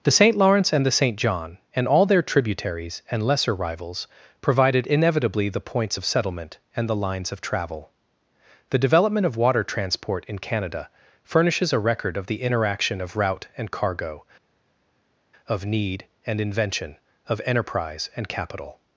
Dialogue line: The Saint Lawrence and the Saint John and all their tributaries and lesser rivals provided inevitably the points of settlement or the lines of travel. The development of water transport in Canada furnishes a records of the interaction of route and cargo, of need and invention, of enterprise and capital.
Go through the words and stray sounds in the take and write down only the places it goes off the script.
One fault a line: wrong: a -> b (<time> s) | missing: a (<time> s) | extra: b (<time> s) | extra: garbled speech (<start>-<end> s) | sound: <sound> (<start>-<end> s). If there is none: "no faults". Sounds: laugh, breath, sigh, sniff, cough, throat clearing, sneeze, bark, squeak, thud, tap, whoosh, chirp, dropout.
wrong: or -> and (6.8 s)
wrong: records -> record (11.8 s)